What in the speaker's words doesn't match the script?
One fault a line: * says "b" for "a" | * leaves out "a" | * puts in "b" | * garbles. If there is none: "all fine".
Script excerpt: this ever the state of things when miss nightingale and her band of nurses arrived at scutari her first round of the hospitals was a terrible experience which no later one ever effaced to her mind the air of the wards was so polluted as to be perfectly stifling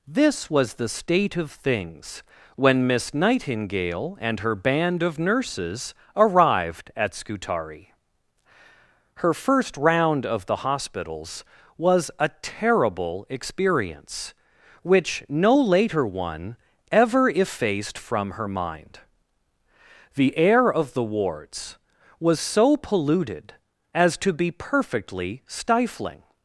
* says "was" for "ever"
* says "from" for "to"